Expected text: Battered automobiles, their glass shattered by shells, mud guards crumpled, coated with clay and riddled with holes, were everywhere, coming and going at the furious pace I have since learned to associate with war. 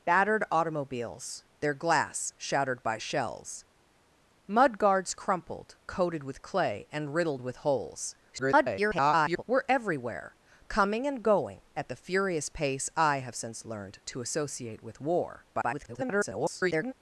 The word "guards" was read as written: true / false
true